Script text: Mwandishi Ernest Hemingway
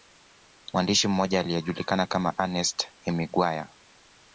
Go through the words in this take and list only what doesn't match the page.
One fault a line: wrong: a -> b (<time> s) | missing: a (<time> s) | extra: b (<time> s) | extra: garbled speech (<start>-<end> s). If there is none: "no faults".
extra: mmoja aliyejulikana kama (1.1 s)